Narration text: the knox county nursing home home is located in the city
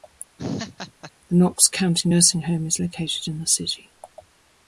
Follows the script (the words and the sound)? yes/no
no